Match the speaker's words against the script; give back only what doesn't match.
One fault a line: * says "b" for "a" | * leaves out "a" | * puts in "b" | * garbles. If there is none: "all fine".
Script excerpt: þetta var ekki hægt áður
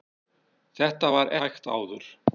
* leaves out "ekki"